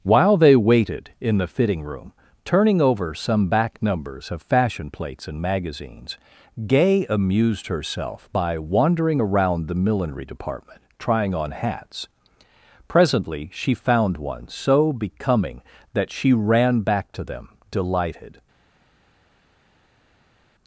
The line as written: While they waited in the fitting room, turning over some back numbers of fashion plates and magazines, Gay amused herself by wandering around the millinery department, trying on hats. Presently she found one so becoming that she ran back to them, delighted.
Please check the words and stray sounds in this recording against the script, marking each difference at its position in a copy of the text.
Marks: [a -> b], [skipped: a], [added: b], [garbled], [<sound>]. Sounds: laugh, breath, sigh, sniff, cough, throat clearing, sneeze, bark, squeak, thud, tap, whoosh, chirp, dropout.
While they waited in the fitting room, turning over some back numbers of fashion plates and magazines, Gay amused herself by wandering around the millinery department, trying on hats. Presently she found one so becoming that she ran back to them, delighted.